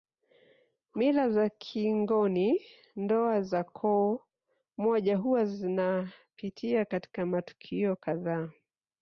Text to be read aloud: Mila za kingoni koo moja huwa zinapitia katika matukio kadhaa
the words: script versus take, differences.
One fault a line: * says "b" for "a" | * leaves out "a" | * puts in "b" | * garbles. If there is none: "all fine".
* puts in "ndoa za"